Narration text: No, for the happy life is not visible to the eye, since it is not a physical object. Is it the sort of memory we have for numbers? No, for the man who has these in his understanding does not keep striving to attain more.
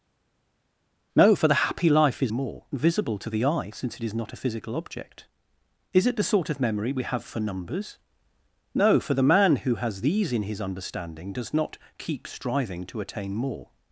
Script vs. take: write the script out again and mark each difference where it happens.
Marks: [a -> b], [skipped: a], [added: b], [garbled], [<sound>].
No, for the happy life is [not -> more] visible to the eye, since it is not a physical object. Is it the sort of memory we have for numbers? No, for the man who has these in his understanding does not keep striving to attain more.